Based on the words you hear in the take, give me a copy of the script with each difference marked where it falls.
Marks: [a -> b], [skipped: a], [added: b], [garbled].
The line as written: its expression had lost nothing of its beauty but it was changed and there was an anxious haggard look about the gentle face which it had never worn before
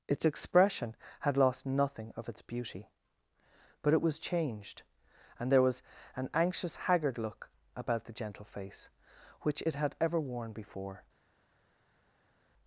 its expression had lost nothing of its beauty but it was changed and there was an anxious haggard look about the gentle face which it had [never -> ever] worn before